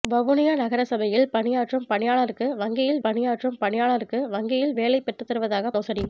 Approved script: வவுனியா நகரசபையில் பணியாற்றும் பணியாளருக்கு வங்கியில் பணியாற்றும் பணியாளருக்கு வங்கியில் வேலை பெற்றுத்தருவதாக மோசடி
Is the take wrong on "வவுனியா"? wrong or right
right